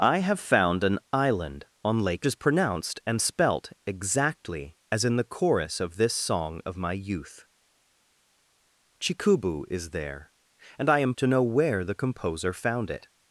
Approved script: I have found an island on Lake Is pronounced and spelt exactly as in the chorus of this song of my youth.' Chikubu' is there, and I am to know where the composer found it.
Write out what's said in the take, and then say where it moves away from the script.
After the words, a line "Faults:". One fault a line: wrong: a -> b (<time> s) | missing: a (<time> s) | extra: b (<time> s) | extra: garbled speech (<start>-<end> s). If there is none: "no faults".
I have found an island on Lake Is pronounced and spelt exactly as in the chorus of this song of my youth.' Chikubu' is there, and I am to know where the composer found it.
Faults:
no faults